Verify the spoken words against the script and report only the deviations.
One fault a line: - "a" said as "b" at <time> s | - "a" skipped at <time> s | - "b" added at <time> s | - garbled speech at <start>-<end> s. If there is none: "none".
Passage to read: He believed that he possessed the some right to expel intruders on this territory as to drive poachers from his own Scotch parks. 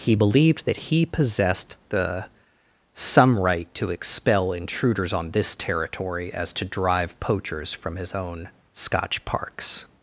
none